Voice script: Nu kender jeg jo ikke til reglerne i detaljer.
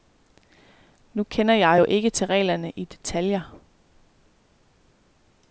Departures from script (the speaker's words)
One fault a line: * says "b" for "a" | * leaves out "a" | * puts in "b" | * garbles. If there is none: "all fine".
all fine